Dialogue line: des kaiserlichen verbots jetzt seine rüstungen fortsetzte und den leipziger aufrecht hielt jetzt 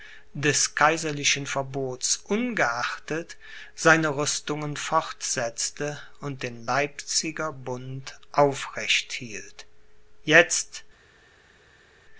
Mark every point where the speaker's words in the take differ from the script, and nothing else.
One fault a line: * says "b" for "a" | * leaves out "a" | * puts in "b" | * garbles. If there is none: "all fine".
* says "ungeachtet" for "jetzt"
* puts in "bund"